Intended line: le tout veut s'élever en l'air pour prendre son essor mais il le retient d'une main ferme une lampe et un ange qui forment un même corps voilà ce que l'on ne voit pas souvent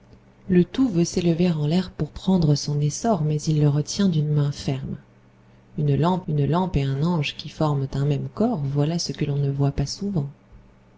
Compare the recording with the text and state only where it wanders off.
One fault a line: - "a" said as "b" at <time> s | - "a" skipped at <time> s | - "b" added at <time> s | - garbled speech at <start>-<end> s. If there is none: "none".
- "une lampe" added at 6.3 s